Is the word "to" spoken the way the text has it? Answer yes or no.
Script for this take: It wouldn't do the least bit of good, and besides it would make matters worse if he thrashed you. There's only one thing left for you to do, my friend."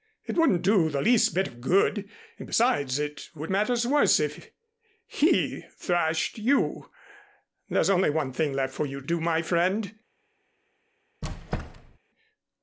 no